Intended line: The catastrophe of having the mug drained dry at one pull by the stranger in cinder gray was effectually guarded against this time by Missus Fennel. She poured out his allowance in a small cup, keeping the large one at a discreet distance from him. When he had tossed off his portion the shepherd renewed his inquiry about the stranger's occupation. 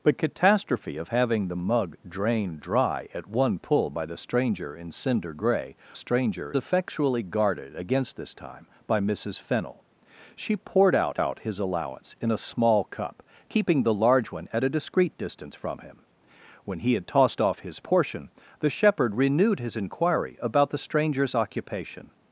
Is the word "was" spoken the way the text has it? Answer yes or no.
no